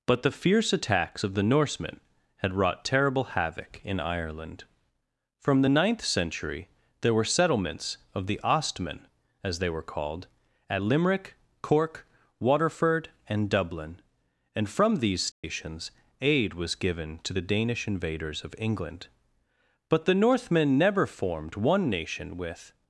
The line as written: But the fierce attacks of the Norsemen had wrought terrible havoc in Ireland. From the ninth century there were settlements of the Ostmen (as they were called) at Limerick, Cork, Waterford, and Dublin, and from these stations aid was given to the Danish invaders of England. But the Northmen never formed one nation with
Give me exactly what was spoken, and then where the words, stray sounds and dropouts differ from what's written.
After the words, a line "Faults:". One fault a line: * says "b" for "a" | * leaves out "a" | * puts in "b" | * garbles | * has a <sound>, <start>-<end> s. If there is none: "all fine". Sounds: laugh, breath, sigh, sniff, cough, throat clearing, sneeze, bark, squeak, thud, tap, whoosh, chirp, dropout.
But the fierce attacks of the Norsemen had wrought terrible havoc in Ireland. From the ninth century there were settlements of the Ostmen (as they were called) at Limerick, Cork, Waterford, and Dublin, and from these stations aid was given to the Danish invaders of England. But the Northmen never formed one nation with
Faults:
* has a dropout, 15.3-15.4 s